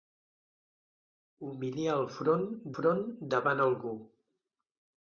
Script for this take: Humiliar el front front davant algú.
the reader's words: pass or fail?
pass